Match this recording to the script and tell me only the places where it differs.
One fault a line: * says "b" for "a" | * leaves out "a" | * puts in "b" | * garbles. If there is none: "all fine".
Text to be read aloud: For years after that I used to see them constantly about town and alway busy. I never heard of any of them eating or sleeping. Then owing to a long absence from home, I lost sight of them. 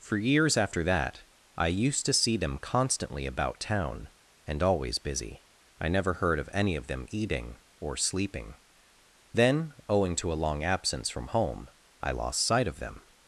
* says "always" for "alway"